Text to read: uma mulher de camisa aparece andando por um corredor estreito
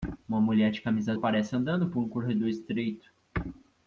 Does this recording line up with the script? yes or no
yes